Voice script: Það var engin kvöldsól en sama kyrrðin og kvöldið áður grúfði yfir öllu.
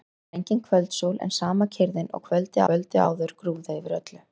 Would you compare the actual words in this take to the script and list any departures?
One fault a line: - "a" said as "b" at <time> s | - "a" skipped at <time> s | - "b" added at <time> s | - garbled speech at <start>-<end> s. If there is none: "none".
- "kvöldið" added at 2.7 s